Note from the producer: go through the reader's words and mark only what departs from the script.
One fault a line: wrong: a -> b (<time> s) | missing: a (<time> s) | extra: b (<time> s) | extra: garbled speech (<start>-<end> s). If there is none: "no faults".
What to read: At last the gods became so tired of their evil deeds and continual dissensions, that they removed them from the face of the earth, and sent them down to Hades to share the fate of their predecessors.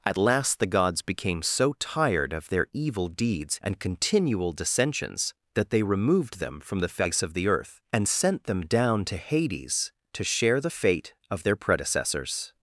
no faults